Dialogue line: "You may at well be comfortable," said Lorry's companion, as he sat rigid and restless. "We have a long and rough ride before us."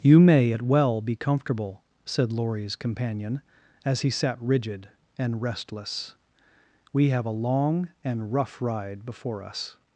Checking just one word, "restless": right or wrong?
right